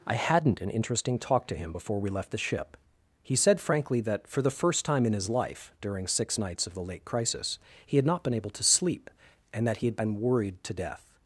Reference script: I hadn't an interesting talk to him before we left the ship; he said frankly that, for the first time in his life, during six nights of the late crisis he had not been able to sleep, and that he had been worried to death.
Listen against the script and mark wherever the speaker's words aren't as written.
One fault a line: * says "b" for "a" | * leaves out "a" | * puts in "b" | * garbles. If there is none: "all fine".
all fine